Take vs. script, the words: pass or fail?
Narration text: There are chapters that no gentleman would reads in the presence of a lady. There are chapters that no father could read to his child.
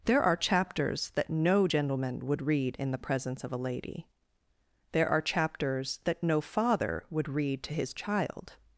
fail